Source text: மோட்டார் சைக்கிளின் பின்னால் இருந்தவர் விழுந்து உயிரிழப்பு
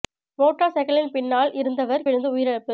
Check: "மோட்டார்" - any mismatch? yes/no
no